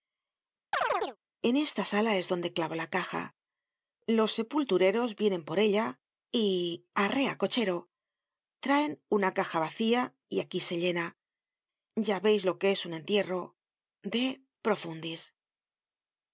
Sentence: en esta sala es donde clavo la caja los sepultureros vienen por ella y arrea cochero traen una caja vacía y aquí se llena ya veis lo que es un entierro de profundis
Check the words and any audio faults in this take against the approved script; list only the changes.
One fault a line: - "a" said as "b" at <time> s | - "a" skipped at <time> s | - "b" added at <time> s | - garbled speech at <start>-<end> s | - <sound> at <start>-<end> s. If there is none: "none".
- chirp at 0.7-1.2 s